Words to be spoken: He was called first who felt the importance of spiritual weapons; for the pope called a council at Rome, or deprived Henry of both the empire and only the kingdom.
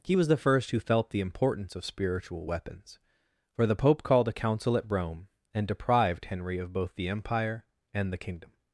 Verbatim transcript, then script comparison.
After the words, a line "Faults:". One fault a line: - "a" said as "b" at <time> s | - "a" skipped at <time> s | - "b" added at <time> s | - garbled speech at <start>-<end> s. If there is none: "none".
He was the first who felt the importance of spiritual weapons; for the pope called a council at Rome, and deprived Henry of both the empire and the kingdom.
Faults:
- "called" said as "the" at 0.3 s
- "or" said as "and" at 5.5 s
- "only" skipped at 8.1 s